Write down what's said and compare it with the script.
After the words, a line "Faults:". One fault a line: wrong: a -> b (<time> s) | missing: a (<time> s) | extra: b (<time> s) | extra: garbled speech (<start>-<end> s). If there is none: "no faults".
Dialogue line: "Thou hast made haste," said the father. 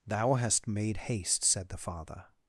"Thou hast made haste," said the father.
Faults:
no faults